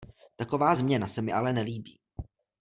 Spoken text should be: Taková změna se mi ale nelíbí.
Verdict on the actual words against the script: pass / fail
pass